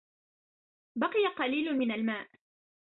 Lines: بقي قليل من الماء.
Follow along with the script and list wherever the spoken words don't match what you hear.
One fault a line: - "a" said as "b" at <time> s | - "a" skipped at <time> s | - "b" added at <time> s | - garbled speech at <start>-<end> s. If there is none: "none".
none